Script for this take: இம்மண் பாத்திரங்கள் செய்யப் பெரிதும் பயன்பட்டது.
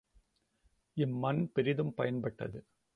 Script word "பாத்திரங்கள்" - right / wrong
wrong